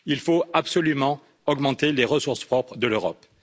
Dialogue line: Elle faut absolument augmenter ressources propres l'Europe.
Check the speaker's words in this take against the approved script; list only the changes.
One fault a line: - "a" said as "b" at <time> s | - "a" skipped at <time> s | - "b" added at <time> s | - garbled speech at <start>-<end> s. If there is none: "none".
- "Elle" said as "Il" at 0.1 s
- "les" added at 1.9 s
- "de" added at 2.8 s